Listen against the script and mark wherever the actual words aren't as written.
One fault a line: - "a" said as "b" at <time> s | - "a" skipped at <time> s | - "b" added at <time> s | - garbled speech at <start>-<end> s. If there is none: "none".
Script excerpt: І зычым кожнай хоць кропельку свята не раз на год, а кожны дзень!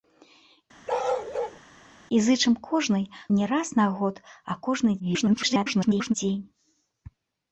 - "хоць кропельку свята" skipped at 3.0 s
- garbled speech at 5.0-6.1 s